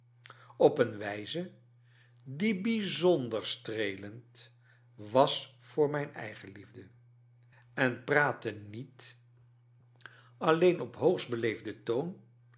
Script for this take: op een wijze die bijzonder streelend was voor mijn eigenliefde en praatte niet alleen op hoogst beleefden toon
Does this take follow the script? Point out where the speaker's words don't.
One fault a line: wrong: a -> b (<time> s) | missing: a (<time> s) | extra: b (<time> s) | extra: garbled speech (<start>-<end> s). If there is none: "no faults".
no faults